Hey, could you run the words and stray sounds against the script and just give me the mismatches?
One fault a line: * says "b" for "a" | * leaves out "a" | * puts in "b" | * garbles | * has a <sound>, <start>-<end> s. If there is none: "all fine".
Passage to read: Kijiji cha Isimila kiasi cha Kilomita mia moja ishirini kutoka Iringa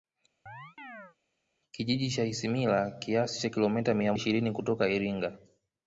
* has a chirp, 0.5-1.2 s
* leaves out "moja"